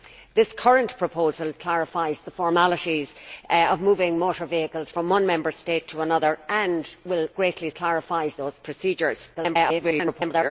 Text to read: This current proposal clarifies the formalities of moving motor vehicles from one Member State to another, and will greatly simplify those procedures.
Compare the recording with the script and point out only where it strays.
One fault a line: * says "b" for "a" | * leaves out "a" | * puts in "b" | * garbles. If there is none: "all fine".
* says "clarifies" for "simplify"
* garbles